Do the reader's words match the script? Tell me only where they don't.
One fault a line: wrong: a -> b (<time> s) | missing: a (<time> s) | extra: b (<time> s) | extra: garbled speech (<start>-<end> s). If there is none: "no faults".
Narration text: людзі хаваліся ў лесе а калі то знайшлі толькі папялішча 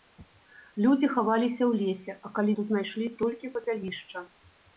no faults